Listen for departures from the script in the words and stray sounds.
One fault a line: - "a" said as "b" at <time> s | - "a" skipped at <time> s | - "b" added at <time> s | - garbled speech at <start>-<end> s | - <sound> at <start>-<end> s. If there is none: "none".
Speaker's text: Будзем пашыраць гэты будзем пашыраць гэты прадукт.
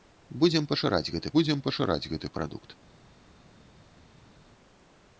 none